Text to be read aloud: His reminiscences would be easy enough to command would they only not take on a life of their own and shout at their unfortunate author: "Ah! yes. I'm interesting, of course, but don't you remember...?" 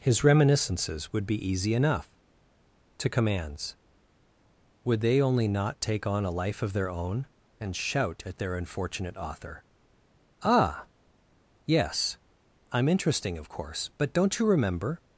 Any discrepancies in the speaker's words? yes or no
yes